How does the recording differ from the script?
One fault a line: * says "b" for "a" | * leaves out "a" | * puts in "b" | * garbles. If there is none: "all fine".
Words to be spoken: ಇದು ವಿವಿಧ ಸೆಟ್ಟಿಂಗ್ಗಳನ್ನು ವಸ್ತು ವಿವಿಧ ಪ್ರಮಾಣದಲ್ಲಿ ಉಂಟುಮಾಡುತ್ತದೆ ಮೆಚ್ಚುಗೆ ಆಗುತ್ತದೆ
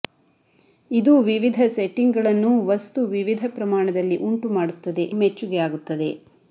all fine